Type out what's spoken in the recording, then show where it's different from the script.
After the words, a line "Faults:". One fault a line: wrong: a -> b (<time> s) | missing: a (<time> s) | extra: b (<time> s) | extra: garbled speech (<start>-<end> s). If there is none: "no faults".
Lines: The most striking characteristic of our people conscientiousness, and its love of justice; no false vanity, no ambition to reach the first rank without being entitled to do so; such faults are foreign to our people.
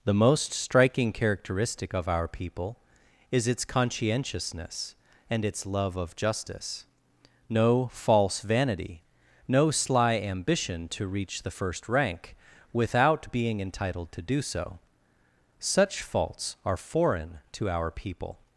The most striking characteristic of our people is its conscientiousness, and its love of justice; no false vanity, no sly ambition to reach the first rank without being entitled to do so; such faults are foreign to our people.
Faults:
extra: is its (3.3 s)
extra: sly (9.7 s)